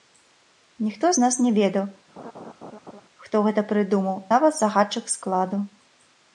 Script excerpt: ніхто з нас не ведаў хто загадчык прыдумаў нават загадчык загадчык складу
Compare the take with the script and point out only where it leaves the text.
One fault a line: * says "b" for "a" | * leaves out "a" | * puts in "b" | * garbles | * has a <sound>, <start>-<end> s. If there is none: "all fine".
* has a laugh, 2.2-3.0 s
* says "гэта" for "загадчык"
* leaves out "загадчык"